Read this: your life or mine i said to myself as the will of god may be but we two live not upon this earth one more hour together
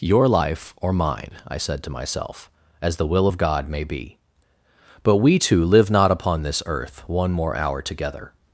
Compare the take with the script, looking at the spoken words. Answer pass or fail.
pass